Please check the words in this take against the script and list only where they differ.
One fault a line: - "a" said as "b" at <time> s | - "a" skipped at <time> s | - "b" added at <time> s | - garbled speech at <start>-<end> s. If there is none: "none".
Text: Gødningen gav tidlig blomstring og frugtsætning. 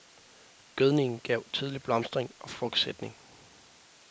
none